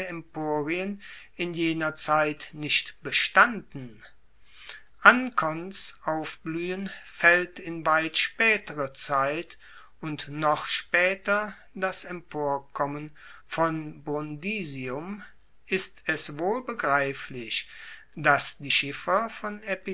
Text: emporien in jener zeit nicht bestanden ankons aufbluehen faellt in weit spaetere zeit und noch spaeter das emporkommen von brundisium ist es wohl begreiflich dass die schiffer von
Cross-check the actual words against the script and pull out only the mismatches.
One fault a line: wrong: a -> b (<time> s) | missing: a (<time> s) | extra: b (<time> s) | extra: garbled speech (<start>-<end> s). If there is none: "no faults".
no faults